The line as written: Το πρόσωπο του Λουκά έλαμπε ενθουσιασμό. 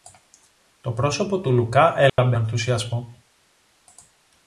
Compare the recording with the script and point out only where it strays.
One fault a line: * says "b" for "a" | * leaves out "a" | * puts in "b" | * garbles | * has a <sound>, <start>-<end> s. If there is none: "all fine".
* has a dropout, 2.1-2.2 s